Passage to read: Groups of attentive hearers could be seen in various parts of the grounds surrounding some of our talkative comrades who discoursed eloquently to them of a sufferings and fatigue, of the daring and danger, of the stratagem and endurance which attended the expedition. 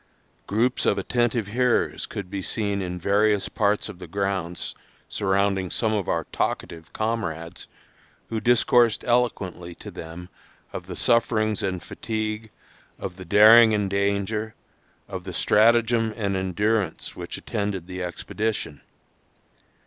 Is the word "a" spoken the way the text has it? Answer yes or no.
no